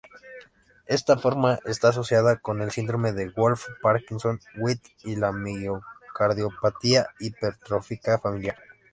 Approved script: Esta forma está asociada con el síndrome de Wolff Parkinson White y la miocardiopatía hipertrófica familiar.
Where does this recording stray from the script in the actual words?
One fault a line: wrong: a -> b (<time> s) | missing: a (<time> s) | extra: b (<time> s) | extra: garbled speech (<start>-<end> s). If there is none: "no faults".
no faults